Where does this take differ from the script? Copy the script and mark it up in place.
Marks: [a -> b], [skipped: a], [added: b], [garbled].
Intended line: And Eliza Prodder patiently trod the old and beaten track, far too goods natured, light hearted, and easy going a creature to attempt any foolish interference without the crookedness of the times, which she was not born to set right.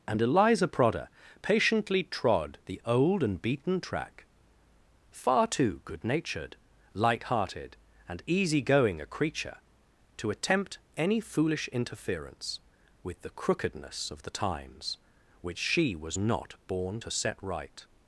And Eliza Prodder patiently trod the old and beaten track, far too [goods -> good] natured, light hearted, and easy going a creature to attempt any foolish interference [without -> with] the crookedness of the times, which she was not born to set right.